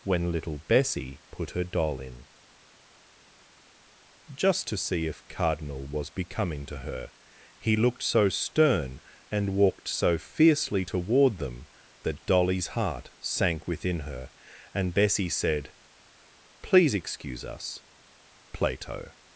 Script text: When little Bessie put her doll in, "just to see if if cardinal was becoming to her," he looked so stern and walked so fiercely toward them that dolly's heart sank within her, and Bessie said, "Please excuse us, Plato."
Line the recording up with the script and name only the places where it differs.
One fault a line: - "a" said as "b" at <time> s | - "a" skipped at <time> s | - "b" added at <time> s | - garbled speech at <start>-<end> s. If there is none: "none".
- "if" skipped at 5.3 s